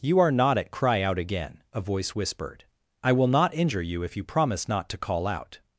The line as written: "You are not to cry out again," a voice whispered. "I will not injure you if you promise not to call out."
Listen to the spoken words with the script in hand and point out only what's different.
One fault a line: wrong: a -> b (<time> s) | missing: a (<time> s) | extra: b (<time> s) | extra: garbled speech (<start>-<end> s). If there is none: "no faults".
wrong: to -> at (0.6 s)